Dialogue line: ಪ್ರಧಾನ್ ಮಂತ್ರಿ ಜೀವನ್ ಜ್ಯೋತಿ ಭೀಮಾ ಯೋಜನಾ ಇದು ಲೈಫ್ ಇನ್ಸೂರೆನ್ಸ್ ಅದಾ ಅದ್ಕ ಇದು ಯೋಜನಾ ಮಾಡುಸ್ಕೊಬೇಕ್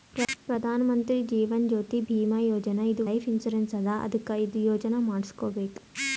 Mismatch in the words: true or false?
false